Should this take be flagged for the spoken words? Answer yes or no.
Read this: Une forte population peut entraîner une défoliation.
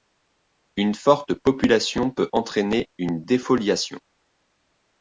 no